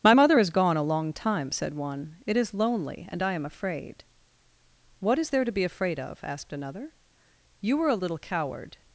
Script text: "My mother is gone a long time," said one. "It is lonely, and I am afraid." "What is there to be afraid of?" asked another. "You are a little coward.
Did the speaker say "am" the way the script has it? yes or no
yes